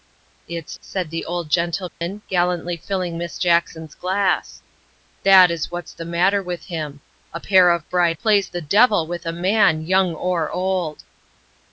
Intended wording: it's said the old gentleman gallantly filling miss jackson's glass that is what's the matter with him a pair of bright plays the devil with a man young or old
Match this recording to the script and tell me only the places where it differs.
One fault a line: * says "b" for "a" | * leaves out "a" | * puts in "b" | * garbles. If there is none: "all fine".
all fine